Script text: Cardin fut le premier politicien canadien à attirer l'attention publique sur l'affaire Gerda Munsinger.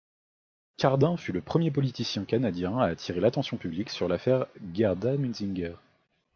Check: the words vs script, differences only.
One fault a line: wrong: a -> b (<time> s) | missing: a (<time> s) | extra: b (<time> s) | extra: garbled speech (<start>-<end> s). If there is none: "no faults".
no faults